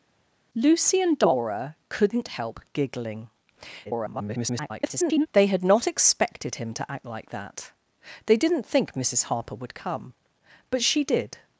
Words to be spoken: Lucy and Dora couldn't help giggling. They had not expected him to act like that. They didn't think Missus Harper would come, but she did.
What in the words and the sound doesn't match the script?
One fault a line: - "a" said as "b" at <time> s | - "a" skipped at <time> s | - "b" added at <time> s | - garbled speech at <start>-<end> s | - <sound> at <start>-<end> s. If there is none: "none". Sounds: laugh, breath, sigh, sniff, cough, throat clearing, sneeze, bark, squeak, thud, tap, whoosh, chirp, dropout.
- garbled speech at 3.8-5.3 s